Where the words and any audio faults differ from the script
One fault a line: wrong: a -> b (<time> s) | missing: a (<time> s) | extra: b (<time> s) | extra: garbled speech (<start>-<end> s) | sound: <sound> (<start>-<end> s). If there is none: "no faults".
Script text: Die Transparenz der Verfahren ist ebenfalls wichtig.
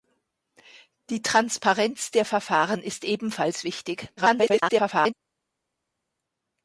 extra: garbled speech (4.2-5.1 s)